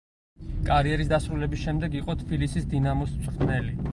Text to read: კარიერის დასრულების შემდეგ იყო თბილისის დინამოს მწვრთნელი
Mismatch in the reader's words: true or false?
false